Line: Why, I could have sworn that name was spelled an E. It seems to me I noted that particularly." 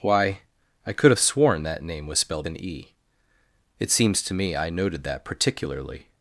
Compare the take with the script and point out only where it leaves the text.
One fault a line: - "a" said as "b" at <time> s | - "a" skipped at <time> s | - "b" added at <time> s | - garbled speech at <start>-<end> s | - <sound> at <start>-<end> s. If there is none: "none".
none